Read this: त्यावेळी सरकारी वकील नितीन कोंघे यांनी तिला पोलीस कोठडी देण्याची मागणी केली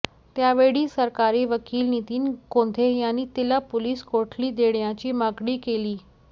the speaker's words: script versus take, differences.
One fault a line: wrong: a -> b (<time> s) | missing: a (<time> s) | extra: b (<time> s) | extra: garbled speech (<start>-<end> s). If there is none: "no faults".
no faults